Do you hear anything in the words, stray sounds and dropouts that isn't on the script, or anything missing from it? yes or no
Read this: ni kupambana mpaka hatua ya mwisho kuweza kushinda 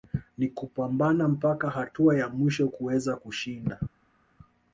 no